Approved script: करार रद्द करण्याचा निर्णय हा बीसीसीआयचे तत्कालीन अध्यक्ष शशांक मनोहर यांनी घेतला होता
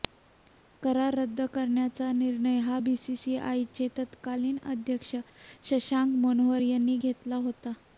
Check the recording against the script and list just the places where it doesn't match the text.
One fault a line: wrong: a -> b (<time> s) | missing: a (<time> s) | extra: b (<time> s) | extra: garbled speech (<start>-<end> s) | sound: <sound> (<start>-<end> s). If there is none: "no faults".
no faults